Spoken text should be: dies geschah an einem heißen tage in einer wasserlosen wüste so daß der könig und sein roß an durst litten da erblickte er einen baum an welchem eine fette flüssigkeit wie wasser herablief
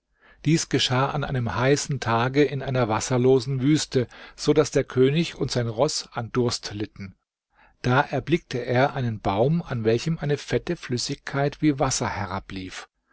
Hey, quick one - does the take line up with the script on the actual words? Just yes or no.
yes